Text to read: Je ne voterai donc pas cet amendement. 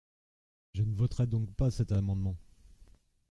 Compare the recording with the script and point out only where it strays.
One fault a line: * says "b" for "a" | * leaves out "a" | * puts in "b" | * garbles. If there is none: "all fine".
all fine